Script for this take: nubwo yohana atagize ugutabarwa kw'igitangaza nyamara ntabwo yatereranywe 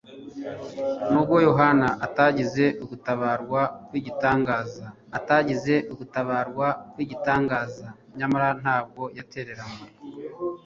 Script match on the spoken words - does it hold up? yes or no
no